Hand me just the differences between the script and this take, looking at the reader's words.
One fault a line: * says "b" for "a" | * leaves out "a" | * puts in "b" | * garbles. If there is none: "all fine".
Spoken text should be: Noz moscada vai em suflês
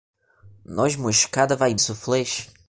all fine